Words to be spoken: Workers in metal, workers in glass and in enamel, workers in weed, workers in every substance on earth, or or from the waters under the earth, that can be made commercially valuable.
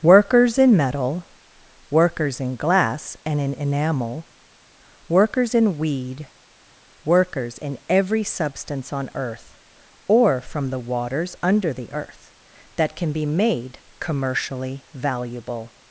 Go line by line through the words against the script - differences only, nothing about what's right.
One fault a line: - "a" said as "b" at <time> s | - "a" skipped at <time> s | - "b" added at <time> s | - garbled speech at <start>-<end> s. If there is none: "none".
- "or" skipped at 10.4 s